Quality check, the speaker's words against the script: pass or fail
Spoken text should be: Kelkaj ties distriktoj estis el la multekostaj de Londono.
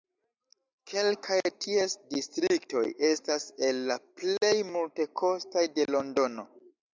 fail